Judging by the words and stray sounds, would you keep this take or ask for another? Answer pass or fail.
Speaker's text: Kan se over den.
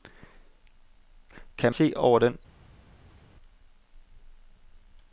pass